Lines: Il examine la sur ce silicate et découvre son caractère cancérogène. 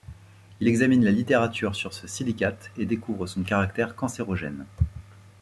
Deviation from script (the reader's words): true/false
true